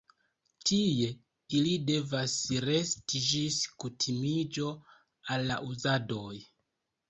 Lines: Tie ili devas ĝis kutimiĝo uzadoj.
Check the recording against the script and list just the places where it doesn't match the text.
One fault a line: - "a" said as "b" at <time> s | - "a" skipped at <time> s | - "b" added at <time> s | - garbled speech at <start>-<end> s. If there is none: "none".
- "resti" added at 2.7 s
- "al la" added at 5.4 s